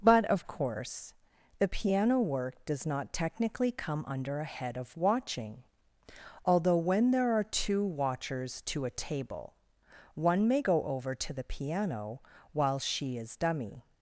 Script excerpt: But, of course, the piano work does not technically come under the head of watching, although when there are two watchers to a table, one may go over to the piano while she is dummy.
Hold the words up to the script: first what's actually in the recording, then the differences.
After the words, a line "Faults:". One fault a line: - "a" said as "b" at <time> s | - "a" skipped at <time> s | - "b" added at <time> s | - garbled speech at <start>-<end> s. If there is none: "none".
But, of course, the piano work does not technically come under a head of watching, although when there are two watchers to a table, one may go over to the piano while she is dummy.
Faults:
- "the" said as "a" at 4.4 s